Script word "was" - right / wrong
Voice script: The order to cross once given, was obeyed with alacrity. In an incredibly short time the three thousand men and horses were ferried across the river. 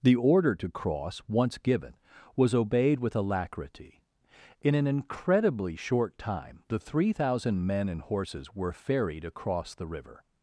right